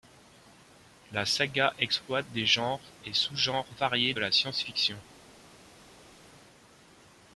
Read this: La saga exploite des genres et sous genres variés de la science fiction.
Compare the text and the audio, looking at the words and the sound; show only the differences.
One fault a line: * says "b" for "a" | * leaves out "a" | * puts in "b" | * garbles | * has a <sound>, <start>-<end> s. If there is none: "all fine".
* leaves out "de"